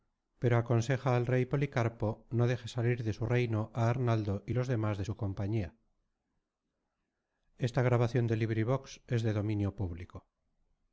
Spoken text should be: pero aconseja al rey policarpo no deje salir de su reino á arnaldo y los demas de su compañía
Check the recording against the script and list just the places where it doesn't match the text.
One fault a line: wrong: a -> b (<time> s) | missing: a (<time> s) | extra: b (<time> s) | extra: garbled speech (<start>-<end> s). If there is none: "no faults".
no faults